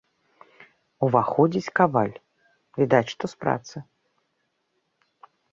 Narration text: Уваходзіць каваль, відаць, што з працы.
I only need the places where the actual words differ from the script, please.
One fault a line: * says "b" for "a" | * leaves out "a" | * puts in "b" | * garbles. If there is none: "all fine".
all fine